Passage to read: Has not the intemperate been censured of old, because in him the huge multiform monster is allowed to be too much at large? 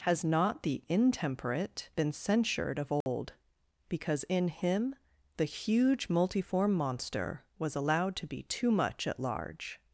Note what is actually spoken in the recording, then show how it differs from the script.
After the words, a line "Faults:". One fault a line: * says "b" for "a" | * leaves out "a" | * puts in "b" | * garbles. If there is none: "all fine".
Has not the intemperate been censured of old, because in him the huge multiform monster was allowed to be too much at large?
Faults:
* says "was" for "is"